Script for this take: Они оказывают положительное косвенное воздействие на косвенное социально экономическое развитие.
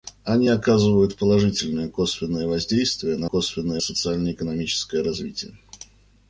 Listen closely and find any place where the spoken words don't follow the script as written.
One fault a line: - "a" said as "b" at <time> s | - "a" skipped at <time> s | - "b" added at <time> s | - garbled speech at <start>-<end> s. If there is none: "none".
none